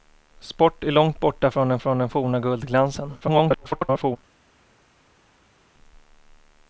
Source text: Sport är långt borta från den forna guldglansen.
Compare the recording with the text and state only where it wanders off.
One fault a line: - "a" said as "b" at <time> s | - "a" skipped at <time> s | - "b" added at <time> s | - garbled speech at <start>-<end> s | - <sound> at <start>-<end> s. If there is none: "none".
- "från den" added at 1.8 s
- garbled speech at 3.2-4.2 s